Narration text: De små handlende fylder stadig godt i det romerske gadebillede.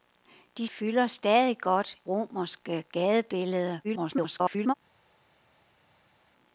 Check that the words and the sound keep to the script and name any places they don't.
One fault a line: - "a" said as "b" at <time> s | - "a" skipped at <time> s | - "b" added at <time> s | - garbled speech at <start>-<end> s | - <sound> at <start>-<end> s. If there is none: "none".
- "små handlende" skipped at 0.7 s
- "i det" skipped at 2.0 s
- garbled speech at 3.8-4.7 s